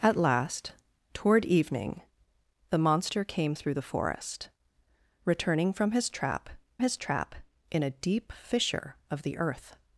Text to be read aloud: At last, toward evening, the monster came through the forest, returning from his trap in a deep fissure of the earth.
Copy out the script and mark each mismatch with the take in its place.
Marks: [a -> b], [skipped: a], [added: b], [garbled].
At last, toward evening, the monster came through the forest, returning from his trap [added: his trap] in a deep fissure of the earth.